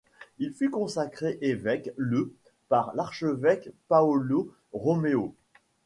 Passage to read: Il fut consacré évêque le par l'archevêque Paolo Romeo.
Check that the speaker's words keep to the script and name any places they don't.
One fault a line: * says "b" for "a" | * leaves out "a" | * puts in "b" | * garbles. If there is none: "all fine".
all fine